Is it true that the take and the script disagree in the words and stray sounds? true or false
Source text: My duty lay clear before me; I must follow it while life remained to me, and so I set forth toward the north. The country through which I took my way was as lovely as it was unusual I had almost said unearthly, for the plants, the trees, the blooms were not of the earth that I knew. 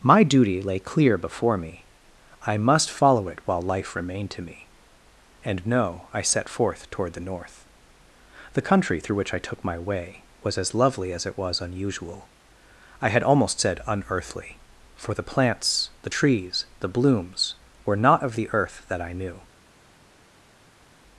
true